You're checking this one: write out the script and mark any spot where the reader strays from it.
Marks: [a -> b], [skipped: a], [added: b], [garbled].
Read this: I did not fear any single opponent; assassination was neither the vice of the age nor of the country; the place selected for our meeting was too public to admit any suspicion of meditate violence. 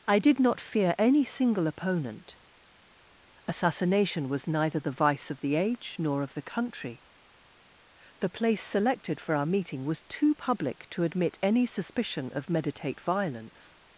I did not fear any single opponent; assassination was neither the vice of the age nor of the country; the place selected for our meeting was too public to admit any suspicion of meditate violence.